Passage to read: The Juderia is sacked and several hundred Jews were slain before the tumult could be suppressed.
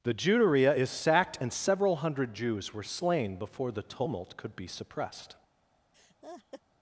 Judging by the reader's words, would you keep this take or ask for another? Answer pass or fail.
pass